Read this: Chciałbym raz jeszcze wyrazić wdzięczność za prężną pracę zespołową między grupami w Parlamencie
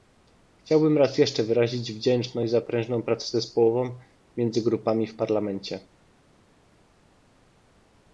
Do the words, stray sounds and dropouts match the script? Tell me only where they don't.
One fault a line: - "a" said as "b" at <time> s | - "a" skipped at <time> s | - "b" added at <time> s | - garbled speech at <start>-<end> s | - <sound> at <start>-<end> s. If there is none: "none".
none